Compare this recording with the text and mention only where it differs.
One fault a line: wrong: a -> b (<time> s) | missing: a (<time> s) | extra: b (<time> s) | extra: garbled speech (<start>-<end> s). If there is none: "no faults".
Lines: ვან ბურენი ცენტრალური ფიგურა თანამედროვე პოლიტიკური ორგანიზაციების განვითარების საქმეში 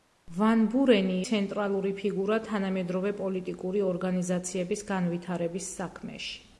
no faults